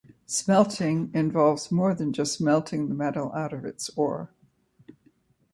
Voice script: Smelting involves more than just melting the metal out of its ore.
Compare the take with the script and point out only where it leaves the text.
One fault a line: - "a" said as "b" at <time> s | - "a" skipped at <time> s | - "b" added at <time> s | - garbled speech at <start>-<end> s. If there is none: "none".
none